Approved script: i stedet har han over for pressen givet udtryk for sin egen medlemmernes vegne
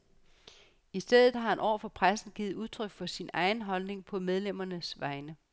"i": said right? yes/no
yes